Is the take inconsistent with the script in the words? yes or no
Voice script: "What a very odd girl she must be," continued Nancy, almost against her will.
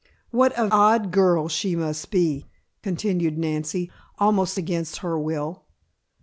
yes